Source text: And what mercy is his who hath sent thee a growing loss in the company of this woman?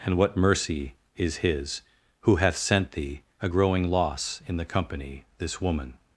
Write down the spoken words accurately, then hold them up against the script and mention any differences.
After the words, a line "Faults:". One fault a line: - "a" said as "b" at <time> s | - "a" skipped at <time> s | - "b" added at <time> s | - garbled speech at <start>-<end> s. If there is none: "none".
And what mercy is his who hath sent thee a growing loss in the company this woman?
Faults:
- "of" skipped at 5.3 s